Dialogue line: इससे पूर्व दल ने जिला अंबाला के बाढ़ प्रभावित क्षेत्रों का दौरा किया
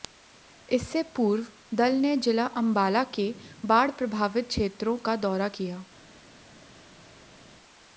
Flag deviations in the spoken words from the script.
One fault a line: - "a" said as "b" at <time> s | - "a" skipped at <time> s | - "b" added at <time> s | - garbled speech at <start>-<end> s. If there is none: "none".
none